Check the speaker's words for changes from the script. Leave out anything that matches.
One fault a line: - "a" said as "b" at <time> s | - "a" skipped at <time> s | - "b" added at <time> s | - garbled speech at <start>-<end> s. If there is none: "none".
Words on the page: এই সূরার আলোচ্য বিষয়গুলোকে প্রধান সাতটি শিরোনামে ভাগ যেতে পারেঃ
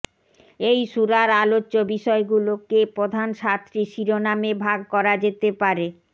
- "করা" added at 4.9 s